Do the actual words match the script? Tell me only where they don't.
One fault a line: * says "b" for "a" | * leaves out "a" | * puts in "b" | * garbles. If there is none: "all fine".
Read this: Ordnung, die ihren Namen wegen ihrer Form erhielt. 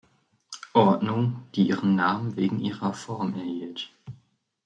all fine